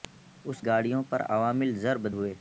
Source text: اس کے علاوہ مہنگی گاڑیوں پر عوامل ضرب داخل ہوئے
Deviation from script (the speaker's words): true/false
true